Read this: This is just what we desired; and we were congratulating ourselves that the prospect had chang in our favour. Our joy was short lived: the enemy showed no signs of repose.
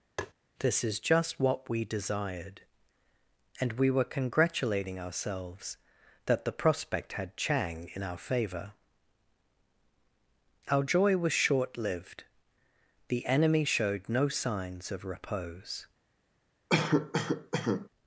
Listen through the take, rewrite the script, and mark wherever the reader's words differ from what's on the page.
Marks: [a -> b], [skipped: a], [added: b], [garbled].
This is just what we desired; and we were congratulating ourselves that the prospect had chang in our favour. Our joy was short lived: the enemy showed no signs of repose.